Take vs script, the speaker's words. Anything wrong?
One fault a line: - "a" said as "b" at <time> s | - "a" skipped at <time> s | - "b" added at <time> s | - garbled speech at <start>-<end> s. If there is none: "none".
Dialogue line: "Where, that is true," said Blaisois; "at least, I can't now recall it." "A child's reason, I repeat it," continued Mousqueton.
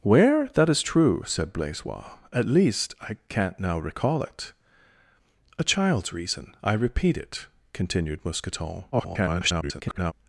- garbled speech at 8.9-10.1 s